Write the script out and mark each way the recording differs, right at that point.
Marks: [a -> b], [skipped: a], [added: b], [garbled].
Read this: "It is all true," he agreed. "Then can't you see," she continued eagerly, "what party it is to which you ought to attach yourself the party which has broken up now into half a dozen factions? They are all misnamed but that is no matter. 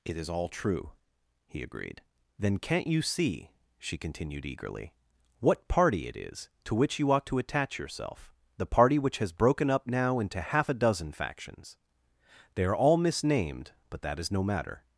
"It is all true," he agreed. "Then can't you see," she continued eagerly, "what party it is to which you ought to attach yourself the party which has broken up now into half a dozen factions? They are all misnamed but that is no matter.